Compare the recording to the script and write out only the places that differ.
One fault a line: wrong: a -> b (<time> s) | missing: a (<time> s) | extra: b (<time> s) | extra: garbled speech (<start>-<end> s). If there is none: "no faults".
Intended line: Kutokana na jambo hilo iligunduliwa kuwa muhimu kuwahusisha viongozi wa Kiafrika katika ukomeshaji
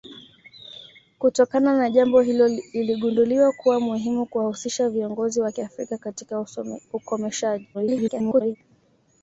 extra: garbled speech (7.7-8.6 s)